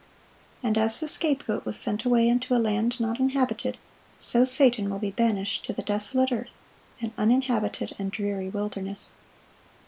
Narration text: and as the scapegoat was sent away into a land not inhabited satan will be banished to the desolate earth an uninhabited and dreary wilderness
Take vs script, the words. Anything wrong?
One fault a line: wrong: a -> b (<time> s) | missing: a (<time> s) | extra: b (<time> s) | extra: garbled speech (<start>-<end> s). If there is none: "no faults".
extra: so (4.2 s)